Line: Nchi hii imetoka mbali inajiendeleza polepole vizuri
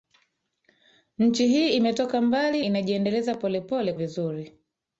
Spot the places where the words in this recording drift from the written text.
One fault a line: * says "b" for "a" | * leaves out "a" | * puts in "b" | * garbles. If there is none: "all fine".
all fine